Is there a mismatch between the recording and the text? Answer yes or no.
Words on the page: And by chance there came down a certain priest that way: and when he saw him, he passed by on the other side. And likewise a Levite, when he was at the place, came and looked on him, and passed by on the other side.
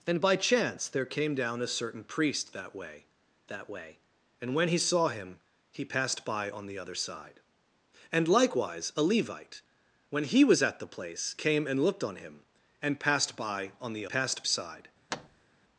yes